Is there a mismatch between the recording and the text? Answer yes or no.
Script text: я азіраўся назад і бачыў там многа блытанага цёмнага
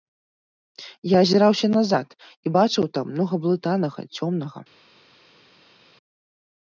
no